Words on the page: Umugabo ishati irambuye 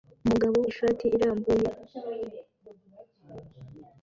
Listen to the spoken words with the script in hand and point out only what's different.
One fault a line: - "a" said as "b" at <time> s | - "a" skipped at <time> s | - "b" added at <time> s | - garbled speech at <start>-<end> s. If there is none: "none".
none